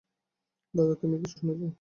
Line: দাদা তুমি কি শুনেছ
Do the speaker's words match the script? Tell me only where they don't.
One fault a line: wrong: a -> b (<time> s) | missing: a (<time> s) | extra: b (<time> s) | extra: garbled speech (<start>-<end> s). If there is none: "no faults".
no faults